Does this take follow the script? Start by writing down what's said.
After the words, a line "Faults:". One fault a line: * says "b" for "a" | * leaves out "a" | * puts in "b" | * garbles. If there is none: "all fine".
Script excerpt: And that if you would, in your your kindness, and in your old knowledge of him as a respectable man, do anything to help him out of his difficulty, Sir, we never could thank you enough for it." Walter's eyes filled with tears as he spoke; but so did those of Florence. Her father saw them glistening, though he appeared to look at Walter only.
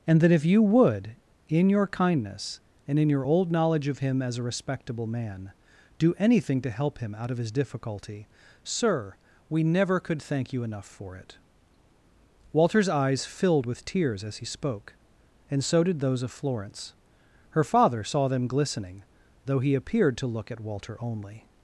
And that if you would, in your kindness, and in your old knowledge of him as a respectable man, do anything to help him out of his difficulty, Sir, we never could thank you enough for it." Walter's eyes filled with tears as he spoke; and so did those of Florence. Her father saw them glistening, though he appeared to look at Walter only.
Faults:
* leaves out "your"
* says "and" for "but"